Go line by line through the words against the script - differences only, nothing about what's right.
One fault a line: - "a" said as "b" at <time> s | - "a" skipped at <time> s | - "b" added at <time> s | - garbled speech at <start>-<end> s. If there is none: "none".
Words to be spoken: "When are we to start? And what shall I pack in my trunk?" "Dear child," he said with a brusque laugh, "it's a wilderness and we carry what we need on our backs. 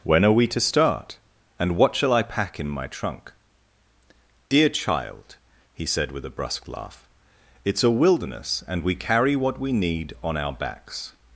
none